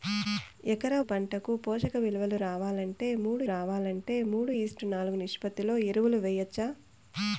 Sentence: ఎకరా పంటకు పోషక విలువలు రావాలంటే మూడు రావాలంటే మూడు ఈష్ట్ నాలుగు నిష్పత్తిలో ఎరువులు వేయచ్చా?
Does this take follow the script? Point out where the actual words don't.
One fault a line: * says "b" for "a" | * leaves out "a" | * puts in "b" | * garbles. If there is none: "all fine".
all fine